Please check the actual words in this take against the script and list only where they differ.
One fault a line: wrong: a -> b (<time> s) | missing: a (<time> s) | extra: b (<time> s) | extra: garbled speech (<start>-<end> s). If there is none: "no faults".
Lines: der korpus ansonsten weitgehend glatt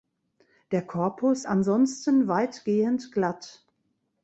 no faults